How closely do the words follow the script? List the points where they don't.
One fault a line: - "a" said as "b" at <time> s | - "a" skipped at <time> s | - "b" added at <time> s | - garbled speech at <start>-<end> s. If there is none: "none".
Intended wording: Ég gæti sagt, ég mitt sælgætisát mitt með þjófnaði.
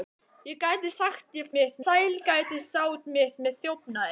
none